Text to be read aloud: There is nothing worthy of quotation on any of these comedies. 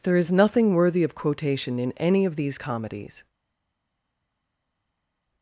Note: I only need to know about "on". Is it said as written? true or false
false